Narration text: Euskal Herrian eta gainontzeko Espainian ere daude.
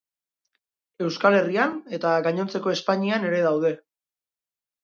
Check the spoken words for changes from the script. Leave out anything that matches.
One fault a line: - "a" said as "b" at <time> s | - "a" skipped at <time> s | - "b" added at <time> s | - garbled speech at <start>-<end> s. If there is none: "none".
none